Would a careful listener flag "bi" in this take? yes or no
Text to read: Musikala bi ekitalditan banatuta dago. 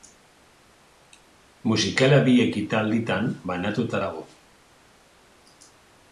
no